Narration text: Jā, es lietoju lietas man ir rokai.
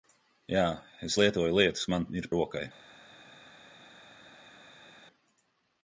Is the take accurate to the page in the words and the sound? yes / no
yes